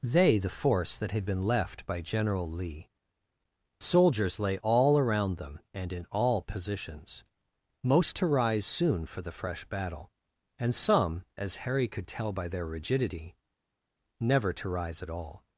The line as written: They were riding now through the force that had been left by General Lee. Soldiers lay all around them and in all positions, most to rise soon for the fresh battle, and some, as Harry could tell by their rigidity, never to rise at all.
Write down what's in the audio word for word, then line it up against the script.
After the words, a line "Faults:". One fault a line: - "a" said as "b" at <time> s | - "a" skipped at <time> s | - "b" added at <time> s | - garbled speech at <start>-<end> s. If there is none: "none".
They the force that had been left by General Lee. Soldiers lay all around them and in all positions, most to rise soon for the fresh battle, and some, as Harry could tell by their rigidity, never to rise at all.
Faults:
- "were riding now through" skipped at 0.4 s